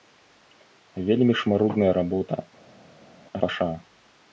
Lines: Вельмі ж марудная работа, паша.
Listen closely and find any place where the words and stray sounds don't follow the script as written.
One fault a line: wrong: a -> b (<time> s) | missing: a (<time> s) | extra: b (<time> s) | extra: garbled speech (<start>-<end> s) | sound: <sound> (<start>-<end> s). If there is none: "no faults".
no faults